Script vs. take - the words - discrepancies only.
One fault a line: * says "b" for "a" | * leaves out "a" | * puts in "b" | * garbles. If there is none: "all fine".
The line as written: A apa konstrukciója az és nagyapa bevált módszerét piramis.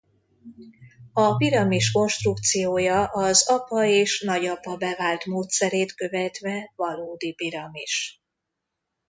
* says "piramis" for "apa"
* puts in "apa"
* puts in "követve valódi"